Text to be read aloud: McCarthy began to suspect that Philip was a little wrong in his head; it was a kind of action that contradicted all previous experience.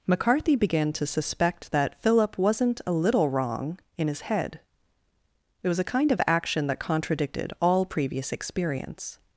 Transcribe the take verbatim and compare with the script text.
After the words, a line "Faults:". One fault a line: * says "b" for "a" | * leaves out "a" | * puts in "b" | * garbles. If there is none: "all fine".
McCarthy began to suspect that Philip wasn't a little wrong in his head; it was a kind of action that contradicted all previous experience.
Faults:
* says "wasn't" for "was"